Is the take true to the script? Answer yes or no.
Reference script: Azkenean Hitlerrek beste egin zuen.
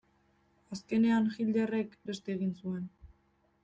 yes